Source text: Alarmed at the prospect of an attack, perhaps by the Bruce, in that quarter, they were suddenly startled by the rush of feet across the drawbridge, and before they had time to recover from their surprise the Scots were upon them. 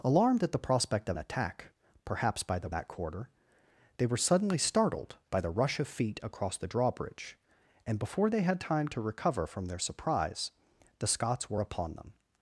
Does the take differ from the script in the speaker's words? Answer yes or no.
yes